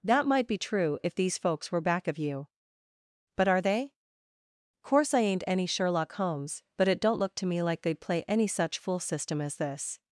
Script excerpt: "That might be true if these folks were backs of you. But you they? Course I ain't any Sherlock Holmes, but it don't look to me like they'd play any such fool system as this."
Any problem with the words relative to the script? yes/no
yes